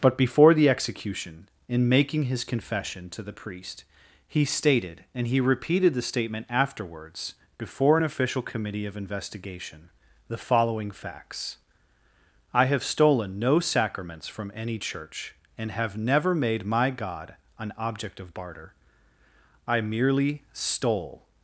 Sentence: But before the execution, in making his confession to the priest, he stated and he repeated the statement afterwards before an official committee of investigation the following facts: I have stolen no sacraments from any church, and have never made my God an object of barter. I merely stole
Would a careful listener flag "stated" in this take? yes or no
no